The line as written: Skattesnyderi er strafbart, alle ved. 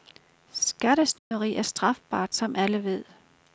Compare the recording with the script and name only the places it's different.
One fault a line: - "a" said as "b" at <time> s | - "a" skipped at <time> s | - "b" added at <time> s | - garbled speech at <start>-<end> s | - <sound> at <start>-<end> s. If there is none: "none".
- dropout at 1.2-1.3 s
- "som" added at 2.3 s